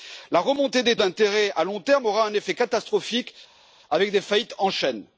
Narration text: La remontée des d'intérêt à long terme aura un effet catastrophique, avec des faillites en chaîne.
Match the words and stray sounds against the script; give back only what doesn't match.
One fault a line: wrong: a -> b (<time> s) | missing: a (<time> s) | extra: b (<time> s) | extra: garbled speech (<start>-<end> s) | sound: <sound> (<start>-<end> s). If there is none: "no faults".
no faults